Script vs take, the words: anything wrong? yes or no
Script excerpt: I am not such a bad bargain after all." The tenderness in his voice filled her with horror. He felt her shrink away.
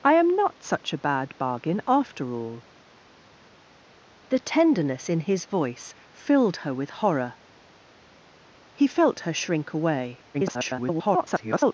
yes